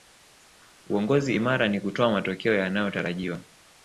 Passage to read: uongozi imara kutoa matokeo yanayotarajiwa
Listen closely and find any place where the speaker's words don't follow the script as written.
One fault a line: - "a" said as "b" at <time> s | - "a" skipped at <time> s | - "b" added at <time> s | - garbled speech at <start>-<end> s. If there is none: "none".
- "ni" added at 1.7 s